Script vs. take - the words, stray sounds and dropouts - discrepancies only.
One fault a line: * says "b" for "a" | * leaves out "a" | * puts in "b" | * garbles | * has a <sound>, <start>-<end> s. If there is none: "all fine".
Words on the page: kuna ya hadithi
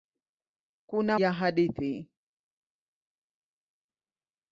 all fine